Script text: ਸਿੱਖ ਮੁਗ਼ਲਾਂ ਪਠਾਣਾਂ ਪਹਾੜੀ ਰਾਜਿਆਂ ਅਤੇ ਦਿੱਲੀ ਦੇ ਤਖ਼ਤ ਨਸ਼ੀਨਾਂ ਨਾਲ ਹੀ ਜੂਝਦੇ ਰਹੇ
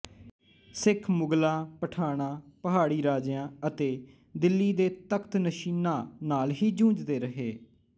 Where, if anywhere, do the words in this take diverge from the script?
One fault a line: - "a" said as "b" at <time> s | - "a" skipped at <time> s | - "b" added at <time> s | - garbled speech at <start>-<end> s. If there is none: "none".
none